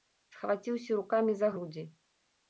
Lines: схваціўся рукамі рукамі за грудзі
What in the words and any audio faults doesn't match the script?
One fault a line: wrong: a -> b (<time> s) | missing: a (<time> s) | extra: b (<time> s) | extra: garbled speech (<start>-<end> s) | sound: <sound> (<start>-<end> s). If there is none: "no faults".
missing: рукамі (1.4 s)